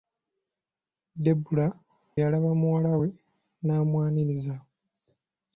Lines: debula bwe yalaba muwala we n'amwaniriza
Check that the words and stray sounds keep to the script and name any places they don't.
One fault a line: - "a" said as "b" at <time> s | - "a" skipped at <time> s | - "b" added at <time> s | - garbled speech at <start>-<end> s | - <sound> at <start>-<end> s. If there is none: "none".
- "bwe" skipped at 1.7 s